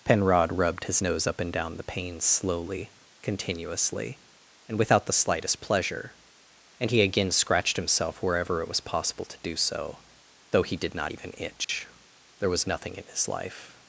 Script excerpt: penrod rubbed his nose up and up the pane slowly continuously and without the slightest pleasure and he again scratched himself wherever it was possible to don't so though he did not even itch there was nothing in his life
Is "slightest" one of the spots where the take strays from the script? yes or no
no